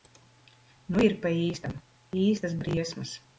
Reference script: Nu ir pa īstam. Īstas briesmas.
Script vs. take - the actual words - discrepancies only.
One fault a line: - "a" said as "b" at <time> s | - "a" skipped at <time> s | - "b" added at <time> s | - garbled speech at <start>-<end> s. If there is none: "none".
none